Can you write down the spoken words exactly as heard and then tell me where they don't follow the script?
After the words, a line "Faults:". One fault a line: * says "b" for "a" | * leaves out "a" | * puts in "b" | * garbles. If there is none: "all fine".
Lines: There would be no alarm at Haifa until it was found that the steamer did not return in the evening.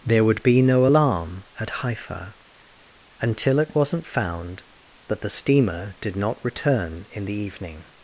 There would be no alarm at Haifa until it wasn't found that the steamer did not return in the evening.
Faults:
* says "wasn't" for "was"